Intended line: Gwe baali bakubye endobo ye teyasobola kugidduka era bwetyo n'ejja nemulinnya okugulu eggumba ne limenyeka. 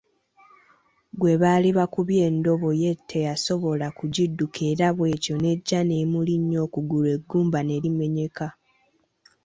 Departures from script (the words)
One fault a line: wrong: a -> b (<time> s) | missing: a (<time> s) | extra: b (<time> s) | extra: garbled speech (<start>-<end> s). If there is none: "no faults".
no faults